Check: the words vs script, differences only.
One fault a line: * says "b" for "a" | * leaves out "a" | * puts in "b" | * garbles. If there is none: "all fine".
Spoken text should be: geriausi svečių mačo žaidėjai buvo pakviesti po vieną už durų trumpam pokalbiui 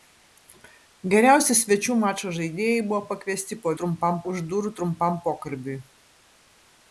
* says "trumpam" for "vieną"